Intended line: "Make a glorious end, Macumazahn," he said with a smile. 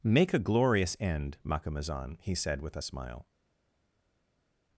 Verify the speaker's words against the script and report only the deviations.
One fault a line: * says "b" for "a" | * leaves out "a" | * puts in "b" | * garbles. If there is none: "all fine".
all fine